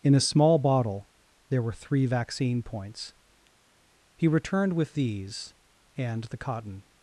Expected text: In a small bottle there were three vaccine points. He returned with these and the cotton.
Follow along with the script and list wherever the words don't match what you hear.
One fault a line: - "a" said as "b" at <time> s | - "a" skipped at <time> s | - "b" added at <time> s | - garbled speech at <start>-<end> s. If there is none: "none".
none